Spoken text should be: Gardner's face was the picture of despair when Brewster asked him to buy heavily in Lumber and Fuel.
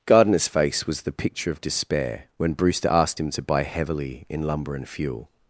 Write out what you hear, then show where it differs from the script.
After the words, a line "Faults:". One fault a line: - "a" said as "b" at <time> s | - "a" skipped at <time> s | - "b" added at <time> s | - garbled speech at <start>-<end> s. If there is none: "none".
Gardner's face was the picture of despair when Brewster asked him to buy heavily in Lumber and Fuel.
Faults:
none